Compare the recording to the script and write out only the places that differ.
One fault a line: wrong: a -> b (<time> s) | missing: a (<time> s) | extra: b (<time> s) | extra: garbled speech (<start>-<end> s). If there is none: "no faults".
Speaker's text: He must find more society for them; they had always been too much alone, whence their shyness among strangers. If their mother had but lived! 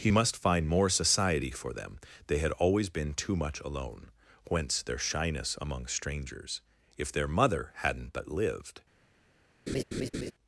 wrong: had -> hadn't (7.7 s)